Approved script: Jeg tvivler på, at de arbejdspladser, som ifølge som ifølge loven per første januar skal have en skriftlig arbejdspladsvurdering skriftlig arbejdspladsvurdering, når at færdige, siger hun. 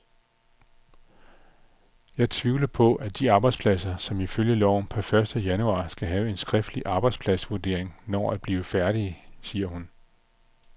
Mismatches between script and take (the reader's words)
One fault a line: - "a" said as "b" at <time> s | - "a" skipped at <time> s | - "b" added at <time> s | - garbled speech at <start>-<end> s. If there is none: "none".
- "som ifølge" skipped at 4.6 s
- "skriftlig arbejdspladsvurdering" skipped at 8.0 s
- "blive" added at 8.4 s